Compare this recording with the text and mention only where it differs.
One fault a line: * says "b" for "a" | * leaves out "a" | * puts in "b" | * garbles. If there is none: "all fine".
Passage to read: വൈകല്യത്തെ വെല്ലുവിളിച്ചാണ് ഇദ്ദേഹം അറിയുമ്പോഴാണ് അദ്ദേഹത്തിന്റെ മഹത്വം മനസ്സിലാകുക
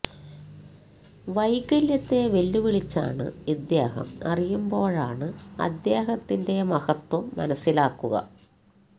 all fine